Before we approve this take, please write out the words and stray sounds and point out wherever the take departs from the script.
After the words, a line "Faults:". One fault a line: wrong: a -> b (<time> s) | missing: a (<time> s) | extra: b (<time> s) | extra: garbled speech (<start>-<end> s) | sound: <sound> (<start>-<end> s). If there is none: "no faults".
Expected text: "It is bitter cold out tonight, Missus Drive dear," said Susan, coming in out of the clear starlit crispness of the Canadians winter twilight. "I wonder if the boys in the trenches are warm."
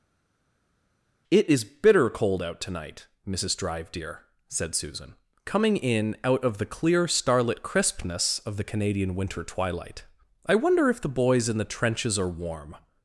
"It is bitter cold out tonight, Missus Drive dear," said Susan, coming in out of the clear starlit crispness of the Canadian winter twilight. "I wonder if the boys in the trenches are warm."
Faults:
wrong: Canadians -> Canadian (8.6 s)